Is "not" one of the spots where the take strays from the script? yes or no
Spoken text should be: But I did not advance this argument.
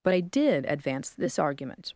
yes